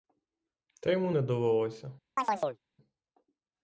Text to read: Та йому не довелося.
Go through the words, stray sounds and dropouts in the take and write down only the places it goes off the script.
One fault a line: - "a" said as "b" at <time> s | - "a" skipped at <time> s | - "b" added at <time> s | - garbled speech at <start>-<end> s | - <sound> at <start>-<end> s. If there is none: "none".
- chirp at 2.2-2.6 s